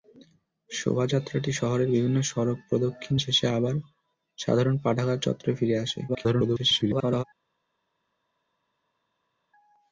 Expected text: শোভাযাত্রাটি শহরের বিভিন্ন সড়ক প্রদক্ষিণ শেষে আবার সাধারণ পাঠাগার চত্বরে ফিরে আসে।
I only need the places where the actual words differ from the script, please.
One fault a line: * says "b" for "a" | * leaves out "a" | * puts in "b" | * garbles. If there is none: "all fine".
* garbles